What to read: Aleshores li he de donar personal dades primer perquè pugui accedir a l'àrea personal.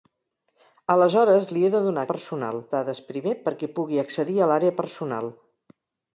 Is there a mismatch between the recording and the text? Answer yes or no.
no